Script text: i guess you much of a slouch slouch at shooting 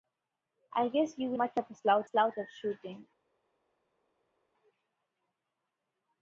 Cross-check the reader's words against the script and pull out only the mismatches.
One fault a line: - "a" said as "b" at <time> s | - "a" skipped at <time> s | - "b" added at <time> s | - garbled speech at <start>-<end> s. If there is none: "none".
none